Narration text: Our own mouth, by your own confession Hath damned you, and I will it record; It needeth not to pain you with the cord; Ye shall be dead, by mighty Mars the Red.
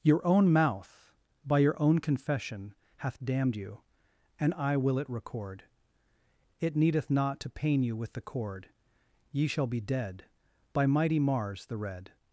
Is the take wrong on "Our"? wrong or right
wrong